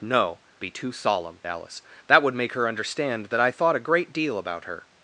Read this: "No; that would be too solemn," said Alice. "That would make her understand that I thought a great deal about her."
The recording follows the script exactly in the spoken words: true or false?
false